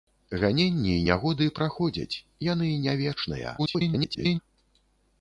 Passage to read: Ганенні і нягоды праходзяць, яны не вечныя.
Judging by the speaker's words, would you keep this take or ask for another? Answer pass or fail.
fail